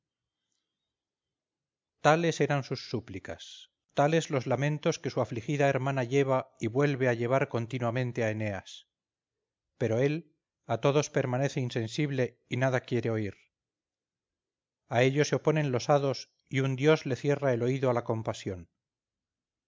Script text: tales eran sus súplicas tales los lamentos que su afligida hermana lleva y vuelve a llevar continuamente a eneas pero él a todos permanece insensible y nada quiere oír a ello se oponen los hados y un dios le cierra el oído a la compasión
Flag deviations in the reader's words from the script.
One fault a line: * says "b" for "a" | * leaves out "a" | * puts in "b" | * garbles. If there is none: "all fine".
all fine